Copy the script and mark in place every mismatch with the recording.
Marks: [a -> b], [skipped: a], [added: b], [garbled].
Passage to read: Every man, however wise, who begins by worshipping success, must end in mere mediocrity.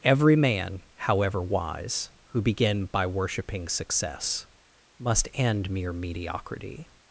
Every man, however wise, who [begins -> begin] by worshipping success, must end [skipped: in] mere mediocrity.